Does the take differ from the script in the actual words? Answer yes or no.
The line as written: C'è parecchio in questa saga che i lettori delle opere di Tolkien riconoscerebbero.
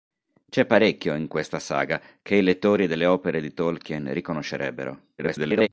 yes